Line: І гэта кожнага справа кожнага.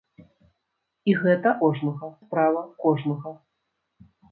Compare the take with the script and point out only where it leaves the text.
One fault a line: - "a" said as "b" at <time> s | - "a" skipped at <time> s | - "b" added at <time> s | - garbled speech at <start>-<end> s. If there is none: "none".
none